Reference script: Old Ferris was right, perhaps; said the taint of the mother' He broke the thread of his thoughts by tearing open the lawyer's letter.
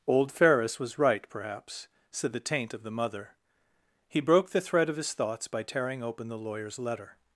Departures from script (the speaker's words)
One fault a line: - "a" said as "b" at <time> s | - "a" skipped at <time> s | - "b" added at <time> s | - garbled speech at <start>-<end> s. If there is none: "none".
none